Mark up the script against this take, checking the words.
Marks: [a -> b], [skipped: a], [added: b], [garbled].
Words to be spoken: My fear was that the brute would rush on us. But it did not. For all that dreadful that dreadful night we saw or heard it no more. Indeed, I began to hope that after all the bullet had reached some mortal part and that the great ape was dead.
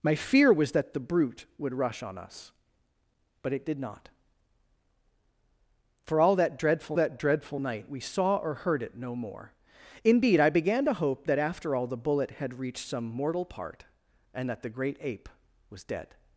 My fear was that the brute would rush on us. But it did not. For all that dreadful that dreadful night we saw or heard it no more. Indeed, I began to hope that after all the bullet had reached some mortal part and that the great ape was dead.